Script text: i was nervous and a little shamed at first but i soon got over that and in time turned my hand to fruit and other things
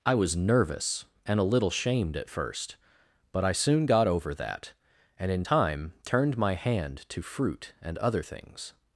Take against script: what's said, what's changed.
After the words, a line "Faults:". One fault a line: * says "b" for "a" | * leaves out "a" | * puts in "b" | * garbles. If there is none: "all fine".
i was nervous and a little shamed at first but i soon got over that and in time turned my hand to fruit and other things
Faults:
all fine